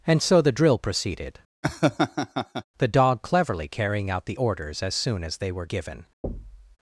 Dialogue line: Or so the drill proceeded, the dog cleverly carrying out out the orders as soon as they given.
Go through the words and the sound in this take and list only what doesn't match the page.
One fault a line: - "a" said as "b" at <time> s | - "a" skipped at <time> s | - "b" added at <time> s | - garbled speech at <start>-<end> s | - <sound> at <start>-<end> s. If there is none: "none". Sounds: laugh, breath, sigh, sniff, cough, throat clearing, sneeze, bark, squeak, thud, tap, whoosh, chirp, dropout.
- "Or" said as "And" at 0.1 s
- laugh at 1.6-2.6 s
- "out" skipped at 4.2 s
- "were" added at 5.5 s
- thud at 6.2-6.8 s